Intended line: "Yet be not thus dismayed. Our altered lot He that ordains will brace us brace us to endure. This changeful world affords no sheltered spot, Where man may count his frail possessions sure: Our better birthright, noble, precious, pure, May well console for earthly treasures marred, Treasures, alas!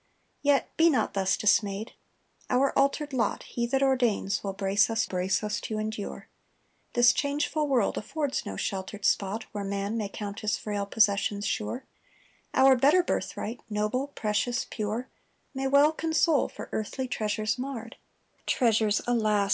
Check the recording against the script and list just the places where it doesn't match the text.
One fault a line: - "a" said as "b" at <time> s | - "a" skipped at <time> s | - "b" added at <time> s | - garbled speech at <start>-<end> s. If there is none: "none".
none